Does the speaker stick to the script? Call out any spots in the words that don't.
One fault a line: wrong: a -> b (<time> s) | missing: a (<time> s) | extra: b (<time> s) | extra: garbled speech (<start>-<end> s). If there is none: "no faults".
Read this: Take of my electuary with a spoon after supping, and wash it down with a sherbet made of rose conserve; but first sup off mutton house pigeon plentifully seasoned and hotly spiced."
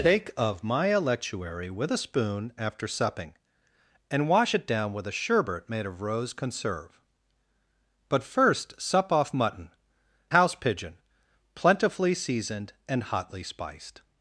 no faults